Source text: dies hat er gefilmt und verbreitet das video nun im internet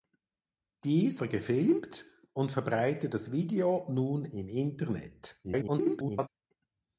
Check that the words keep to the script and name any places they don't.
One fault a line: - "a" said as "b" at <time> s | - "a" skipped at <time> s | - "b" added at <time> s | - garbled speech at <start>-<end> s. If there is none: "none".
- "hat" skipped at 1.2 s
- garbled speech at 5.4-6.3 s